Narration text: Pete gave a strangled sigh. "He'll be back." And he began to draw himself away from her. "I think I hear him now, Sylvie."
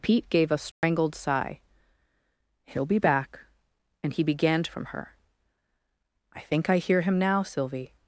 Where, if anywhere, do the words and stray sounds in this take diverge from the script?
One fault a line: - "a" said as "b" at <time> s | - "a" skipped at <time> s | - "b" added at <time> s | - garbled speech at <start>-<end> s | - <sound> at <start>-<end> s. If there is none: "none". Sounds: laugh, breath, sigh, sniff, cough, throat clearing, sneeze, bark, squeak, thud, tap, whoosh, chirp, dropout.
- dropout at 0.7-0.8 s
- "draw himself away" skipped at 4.7 s